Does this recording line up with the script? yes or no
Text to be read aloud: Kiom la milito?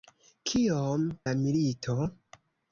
yes